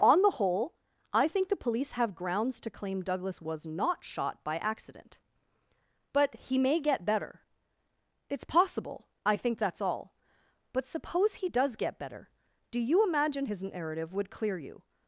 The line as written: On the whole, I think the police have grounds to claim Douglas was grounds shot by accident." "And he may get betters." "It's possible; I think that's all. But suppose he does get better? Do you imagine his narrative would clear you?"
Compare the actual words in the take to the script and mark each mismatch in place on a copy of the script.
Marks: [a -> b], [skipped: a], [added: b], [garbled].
On the whole, I think the police have grounds to claim Douglas was [grounds -> not] shot by accident." ["And -> But] he may get [betters." -> better] "It's possible; I think that's all. But suppose he does get better? Do you imagine his narrative would clear you?"